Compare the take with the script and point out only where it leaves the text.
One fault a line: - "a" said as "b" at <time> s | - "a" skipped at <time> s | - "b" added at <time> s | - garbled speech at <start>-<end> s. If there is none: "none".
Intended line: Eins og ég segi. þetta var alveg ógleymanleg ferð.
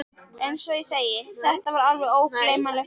none